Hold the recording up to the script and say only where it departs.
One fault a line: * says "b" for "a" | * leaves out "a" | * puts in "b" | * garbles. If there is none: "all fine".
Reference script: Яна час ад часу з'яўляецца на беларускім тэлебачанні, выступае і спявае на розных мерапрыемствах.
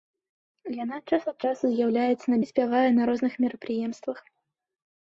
* leaves out "беларускім тэлебачанні выступае"